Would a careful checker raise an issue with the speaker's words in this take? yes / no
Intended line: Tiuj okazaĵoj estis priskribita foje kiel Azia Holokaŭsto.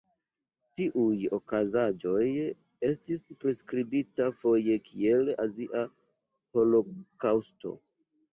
no